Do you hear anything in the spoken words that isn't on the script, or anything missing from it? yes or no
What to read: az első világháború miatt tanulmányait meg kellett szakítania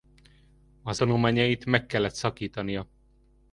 yes